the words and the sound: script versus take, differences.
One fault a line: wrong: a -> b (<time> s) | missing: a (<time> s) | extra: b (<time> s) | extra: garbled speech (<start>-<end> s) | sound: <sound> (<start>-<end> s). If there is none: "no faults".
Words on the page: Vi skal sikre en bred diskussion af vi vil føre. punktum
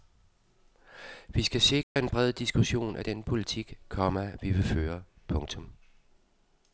sound: dropout (1.8-2.0 s)
extra: den politik komma (3.0 s)